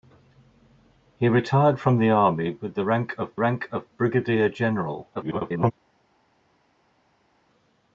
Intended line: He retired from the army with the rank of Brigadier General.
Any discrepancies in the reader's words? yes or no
yes